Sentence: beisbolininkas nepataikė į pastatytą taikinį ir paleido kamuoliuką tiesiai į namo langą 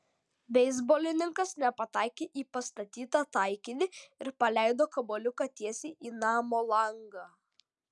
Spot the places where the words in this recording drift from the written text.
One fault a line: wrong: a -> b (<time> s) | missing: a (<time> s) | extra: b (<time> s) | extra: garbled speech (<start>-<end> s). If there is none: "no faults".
no faults